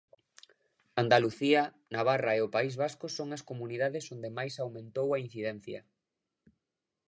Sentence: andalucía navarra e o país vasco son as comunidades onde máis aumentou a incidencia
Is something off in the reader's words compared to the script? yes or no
no